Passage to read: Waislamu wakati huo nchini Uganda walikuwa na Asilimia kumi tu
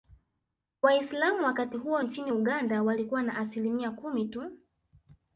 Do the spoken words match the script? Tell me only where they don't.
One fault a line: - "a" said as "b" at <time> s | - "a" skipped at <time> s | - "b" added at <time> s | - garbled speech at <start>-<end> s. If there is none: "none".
none